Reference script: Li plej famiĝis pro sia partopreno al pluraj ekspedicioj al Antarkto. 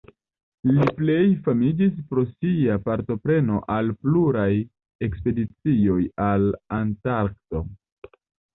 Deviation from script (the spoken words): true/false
false